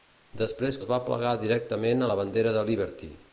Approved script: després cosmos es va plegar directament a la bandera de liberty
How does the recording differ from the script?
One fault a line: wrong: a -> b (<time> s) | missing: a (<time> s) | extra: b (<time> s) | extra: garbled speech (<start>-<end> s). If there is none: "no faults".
missing: cosmos (0.8 s)